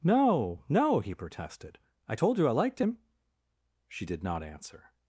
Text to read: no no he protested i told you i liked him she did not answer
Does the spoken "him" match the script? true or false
true